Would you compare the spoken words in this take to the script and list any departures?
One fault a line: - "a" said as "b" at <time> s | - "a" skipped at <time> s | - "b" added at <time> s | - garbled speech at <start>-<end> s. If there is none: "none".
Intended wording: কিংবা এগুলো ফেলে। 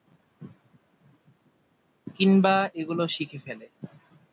- "শিখে" added at 3.1 s